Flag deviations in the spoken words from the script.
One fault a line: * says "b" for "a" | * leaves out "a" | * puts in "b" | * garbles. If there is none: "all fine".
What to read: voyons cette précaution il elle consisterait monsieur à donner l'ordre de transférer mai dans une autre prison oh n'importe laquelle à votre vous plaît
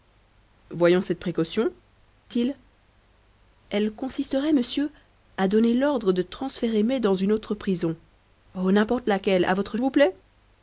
all fine